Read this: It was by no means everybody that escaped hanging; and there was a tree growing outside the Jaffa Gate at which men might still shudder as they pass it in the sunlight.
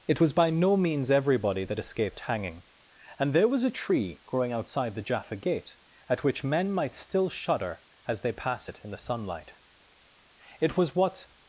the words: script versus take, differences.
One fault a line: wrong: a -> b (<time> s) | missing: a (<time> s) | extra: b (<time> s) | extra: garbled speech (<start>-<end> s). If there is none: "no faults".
extra: It was what (10.6 s)